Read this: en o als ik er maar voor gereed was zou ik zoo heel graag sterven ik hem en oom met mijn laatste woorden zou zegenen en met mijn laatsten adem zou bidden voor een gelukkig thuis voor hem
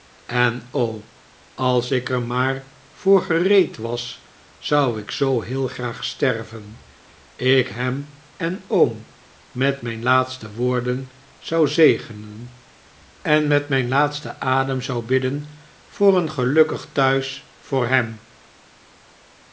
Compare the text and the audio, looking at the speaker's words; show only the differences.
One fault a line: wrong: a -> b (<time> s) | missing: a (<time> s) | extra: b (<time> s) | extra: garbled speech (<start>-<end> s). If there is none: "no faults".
no faults